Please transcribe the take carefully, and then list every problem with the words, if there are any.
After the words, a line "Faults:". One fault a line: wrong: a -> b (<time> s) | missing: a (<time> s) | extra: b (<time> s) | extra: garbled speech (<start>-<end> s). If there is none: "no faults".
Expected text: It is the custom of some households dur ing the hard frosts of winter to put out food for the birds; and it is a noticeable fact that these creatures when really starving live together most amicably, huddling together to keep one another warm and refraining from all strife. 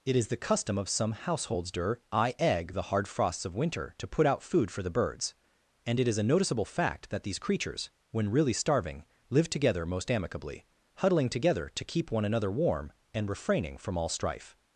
It is the custom of some households dur I egg the hard frosts of winter to put out food for the birds; and it is a noticeable fact that these creatures when really starving live together most amicably, huddling together to keep one another warm and refraining from all strife.
Faults:
wrong: ing -> I egg (2.1 s)